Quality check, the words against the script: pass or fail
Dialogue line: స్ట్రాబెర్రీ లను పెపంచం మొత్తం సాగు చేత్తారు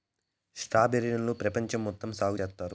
pass